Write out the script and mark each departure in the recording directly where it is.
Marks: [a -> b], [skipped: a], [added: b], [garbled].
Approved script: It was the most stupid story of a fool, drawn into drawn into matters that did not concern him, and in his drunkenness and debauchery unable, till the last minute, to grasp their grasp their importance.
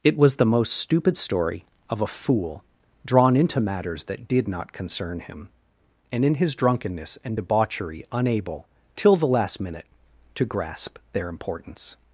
It was the most stupid story of a fool, drawn into [skipped: drawn into] matters that did not concern him, and in his drunkenness and debauchery unable, till the last minute, to grasp their [skipped: grasp their] importance.